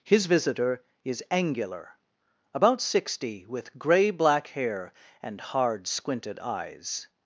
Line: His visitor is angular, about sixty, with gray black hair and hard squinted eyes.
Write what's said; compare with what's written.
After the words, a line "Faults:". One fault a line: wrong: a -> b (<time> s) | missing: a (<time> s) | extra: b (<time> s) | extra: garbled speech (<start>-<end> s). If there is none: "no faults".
His visitor is angular, about sixty, with gray black hair and hard squinted eyes.
Faults:
no faults